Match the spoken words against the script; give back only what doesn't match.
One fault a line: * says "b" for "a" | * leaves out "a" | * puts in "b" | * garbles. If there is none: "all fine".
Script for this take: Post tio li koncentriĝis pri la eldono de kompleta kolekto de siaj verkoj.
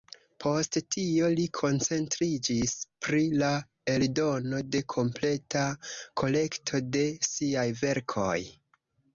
all fine